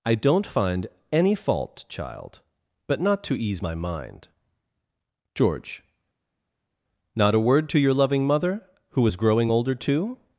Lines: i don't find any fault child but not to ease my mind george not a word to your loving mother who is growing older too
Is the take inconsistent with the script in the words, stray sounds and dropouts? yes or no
no